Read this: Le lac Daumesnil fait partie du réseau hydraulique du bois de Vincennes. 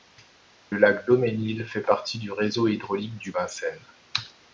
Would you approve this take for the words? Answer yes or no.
no